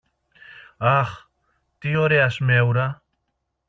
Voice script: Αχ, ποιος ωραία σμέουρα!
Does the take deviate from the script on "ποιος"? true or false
true